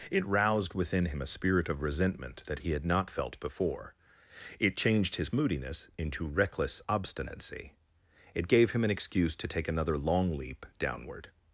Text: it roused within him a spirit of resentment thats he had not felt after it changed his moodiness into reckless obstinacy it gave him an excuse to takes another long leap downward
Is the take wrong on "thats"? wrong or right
wrong